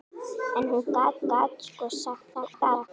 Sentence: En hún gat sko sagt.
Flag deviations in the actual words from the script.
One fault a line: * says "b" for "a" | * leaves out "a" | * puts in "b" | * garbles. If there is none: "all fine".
* puts in "gat"
* garbles